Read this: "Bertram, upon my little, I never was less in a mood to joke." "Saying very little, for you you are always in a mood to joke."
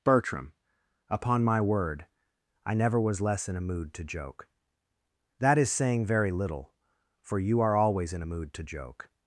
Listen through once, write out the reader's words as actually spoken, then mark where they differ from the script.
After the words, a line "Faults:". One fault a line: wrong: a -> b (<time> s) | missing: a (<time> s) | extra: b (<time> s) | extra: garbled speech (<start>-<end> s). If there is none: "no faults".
"Bertram, upon my word, I never was less in a mood to joke." "That is saying very little, for you are always in a mood to joke."
Faults:
wrong: little -> word (1.6 s)
extra: That is (5.4 s)
missing: you (7.6 s)